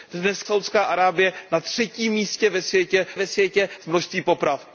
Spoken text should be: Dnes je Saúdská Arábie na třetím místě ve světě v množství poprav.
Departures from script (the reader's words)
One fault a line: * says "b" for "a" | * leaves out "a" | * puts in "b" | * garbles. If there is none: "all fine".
* leaves out "je"
* puts in "ve světě"